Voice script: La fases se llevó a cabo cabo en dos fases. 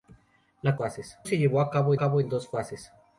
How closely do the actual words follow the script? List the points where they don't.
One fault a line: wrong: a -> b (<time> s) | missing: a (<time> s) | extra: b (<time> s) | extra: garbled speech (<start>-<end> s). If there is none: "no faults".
no faults